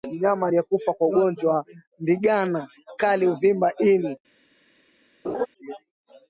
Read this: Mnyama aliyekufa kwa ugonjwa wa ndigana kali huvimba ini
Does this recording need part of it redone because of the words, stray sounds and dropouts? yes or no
yes